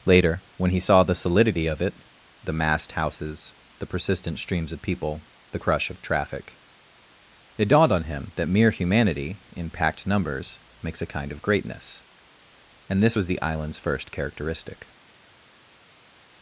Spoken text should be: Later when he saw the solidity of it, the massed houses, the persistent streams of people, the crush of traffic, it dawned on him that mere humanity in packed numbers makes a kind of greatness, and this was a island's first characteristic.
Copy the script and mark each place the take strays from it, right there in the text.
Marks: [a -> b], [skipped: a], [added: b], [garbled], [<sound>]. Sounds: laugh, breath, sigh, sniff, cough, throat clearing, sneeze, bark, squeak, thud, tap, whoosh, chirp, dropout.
Later when he saw the solidity of it, the massed houses, the persistent streams of people, the crush of traffic, it dawned on him that mere humanity in packed numbers makes a kind of greatness, and this was [a -> the] island's first characteristic.